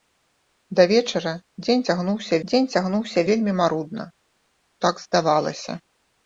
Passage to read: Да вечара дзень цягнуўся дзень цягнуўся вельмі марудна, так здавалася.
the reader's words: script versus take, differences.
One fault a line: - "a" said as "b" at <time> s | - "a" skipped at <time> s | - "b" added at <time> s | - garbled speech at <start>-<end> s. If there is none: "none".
none